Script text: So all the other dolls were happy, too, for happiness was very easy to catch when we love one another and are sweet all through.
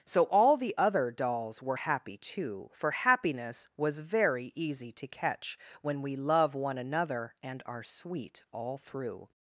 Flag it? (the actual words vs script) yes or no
no